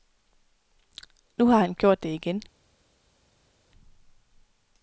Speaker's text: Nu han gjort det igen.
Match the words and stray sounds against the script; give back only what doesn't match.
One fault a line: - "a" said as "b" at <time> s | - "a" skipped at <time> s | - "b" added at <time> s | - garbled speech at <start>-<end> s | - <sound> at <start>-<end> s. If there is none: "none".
- "har" added at 1.4 s